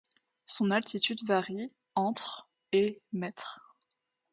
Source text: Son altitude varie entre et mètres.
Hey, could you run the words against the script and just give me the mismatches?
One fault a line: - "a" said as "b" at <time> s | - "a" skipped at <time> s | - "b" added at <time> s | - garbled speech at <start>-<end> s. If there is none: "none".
none